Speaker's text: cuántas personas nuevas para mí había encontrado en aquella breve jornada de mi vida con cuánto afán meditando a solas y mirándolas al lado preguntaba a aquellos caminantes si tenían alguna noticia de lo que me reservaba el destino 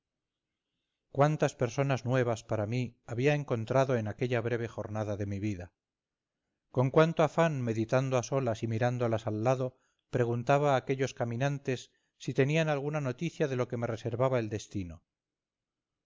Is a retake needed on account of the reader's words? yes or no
no